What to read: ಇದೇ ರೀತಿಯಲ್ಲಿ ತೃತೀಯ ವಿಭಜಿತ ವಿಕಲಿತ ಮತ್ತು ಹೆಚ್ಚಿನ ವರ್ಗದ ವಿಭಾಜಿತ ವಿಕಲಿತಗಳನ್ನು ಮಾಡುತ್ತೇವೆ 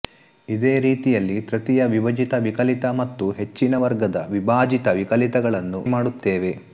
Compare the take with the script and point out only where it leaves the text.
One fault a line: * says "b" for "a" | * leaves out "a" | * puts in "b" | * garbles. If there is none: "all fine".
all fine